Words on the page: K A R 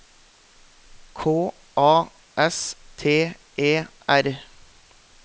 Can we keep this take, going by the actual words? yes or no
no